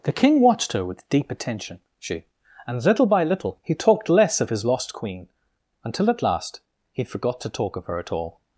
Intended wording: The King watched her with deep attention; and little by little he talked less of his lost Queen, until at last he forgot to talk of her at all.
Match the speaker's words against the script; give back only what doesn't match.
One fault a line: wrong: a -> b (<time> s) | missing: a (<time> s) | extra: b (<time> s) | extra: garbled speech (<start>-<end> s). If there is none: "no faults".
extra: she (2.0 s)